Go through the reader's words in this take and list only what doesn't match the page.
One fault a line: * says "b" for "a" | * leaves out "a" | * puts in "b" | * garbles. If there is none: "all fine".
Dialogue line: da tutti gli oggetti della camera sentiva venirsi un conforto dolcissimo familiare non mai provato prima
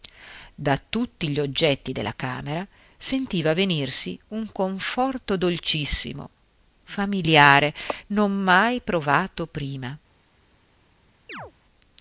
all fine